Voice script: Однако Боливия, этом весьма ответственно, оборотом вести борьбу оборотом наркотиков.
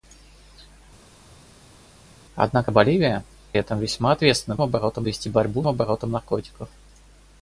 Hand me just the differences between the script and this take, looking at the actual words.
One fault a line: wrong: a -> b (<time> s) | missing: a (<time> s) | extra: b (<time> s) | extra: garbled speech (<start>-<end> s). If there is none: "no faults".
no faults